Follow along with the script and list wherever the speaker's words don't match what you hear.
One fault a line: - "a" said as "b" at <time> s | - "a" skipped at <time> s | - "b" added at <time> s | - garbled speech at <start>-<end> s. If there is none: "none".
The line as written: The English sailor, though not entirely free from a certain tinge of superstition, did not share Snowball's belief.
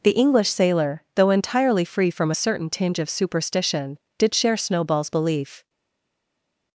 - "not" skipped at 1.3 s
- "not" skipped at 4.3 s